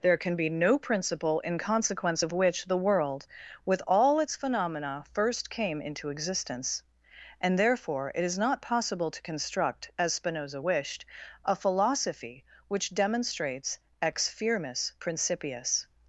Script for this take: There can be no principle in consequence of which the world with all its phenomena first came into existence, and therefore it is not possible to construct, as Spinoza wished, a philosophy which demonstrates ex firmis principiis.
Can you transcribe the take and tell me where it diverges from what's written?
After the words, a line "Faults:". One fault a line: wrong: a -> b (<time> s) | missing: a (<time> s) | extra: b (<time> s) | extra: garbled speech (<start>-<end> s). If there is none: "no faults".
There can be no principle in consequence of which the world with all its phenomena first came into existence, and therefore it is not possible to construct, as Spinoza wished, a philosophy which demonstrates ex firmis principiis.
Faults:
no faults